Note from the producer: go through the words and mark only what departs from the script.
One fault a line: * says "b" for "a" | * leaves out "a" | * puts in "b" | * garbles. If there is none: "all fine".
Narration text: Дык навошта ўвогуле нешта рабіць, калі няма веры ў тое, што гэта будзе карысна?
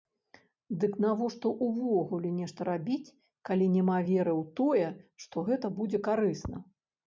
all fine